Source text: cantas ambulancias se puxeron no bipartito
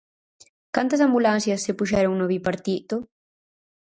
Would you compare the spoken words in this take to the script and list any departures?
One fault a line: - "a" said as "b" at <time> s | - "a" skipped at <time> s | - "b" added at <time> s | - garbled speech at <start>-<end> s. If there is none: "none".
none